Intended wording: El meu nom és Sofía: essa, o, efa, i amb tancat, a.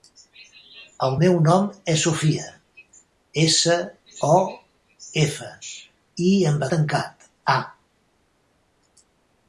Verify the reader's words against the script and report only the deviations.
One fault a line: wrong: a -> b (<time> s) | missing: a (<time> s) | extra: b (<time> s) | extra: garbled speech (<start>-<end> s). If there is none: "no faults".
no faults